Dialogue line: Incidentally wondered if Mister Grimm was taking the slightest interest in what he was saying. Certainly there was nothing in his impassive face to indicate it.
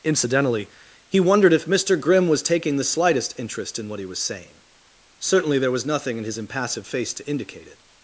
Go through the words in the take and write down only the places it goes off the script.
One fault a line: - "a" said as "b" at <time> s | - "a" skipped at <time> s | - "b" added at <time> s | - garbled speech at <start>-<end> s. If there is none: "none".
- "he" added at 1.1 s